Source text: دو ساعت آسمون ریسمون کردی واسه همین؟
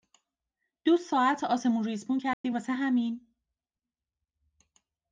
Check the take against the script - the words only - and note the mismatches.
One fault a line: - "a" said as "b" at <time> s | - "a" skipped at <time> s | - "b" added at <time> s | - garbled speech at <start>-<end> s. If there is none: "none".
none